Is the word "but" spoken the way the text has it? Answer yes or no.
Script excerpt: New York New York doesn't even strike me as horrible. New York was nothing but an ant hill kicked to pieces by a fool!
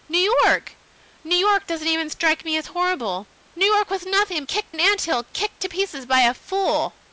no